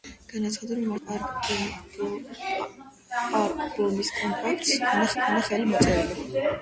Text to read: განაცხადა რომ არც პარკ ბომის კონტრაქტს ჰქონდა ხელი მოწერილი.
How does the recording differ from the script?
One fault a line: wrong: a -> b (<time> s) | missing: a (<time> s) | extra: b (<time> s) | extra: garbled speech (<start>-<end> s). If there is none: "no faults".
missing: არც (0.9 s)
extra: ჰქონდა (5.1 s)